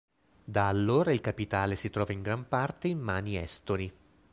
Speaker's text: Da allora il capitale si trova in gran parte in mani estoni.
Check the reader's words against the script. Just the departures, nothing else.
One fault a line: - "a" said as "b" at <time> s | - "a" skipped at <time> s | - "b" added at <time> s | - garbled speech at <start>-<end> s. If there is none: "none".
none